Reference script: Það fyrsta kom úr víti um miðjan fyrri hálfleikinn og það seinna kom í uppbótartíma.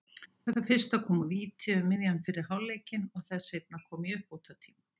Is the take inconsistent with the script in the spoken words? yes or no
no